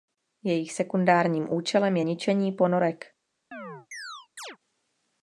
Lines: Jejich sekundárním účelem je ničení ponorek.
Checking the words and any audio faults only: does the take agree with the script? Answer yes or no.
no